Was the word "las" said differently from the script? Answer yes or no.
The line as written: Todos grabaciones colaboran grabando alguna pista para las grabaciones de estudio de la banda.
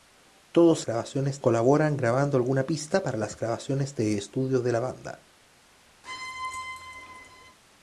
no